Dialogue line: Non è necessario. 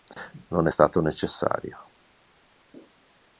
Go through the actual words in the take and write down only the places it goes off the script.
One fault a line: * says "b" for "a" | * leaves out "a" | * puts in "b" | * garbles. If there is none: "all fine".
* puts in "stato"